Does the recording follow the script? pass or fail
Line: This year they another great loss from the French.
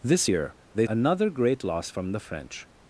pass